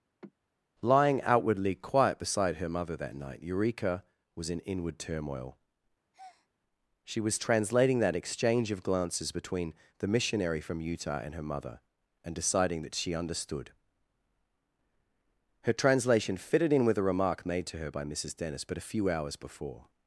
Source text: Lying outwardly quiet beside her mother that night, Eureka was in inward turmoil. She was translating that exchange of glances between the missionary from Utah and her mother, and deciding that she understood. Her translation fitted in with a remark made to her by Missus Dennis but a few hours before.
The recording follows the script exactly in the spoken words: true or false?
true